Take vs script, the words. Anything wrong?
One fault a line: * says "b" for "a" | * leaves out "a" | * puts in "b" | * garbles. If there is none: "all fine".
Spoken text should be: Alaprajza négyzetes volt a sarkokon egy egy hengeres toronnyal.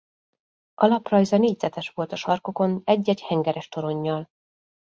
all fine